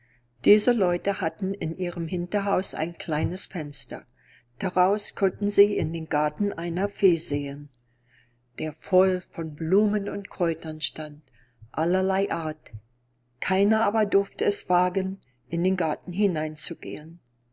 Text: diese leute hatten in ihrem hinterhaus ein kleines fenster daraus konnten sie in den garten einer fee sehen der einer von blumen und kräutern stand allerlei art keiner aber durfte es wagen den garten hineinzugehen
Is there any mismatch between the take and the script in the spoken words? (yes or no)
yes